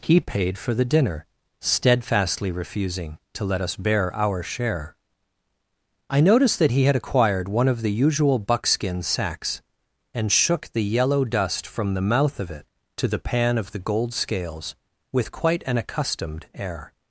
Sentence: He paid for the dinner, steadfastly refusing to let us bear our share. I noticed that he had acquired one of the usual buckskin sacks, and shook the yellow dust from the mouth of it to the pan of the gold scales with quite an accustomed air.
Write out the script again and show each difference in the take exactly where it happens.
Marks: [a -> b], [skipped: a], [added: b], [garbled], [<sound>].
He paid for the dinner, steadfastly refusing to let us bear our share. I noticed that he had acquired one of the usual buckskin sacks, and shook the yellow dust from the mouth of it to the pan of the gold scales with quite an accustomed air.